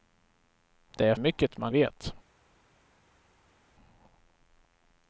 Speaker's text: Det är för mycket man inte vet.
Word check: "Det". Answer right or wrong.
right